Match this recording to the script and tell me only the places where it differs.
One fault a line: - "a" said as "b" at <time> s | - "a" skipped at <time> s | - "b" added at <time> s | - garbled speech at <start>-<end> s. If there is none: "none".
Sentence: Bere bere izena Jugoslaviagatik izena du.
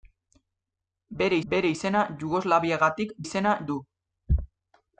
none